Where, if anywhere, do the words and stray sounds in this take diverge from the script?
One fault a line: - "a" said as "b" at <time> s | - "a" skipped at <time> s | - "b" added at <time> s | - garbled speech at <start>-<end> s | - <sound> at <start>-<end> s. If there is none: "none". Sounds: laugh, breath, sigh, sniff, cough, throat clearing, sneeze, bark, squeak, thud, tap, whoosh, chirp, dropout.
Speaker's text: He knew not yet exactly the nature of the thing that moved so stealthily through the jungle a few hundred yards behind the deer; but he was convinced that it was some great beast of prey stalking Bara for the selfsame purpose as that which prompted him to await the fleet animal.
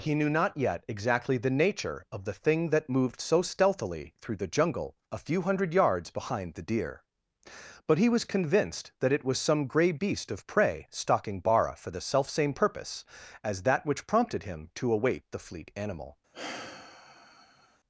- "great" said as "grey" at 9.7 s
- sigh at 16.3-17.8 s